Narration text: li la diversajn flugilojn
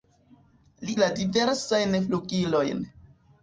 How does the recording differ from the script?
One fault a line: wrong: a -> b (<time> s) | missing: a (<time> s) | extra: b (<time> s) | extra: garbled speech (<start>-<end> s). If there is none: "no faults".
no faults